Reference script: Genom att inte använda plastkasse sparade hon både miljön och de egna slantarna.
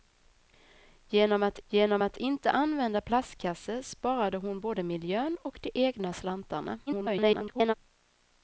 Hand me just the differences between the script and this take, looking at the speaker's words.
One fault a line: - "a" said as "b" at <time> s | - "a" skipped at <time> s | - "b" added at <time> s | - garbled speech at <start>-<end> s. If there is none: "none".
- "genom att" added at 1.7 s
- garbled speech at 6.9-7.7 s